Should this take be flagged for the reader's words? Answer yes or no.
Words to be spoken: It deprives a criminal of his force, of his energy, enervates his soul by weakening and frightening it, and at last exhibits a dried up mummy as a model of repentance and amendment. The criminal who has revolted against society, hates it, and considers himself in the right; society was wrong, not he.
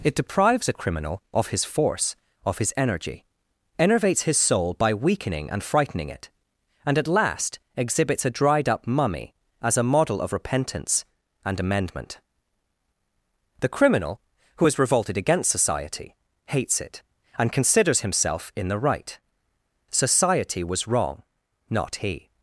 no